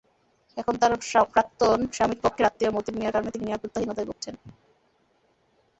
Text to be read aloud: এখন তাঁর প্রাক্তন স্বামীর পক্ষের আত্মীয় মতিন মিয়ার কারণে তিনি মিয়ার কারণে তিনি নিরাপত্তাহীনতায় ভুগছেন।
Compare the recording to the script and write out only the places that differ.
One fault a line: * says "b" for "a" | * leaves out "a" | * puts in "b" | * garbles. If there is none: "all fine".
* leaves out "মিয়ার কারণে তিনি"